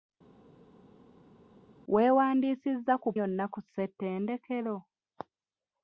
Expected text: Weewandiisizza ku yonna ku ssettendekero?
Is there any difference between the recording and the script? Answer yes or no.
no